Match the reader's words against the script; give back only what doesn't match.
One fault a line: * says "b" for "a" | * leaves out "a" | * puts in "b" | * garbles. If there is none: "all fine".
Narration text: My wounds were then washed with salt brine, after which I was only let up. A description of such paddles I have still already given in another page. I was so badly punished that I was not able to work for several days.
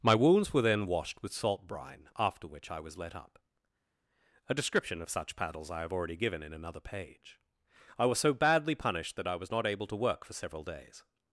* leaves out "only"
* leaves out "still"